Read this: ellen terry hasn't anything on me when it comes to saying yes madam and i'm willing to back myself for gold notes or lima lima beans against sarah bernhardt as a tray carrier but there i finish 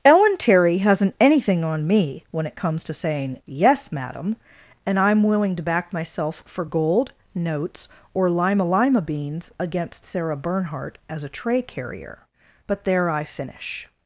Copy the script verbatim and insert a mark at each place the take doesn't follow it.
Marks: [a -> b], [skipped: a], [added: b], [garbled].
ellen terry hasn't anything on me when it comes to saying yes madam and i'm willing to back myself for gold notes or lima lima beans against sarah bernhardt as a tray carrier but there i finish